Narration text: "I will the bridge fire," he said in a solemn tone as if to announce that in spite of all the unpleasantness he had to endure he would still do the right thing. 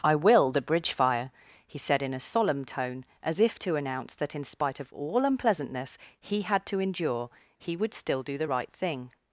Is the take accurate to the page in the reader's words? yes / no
no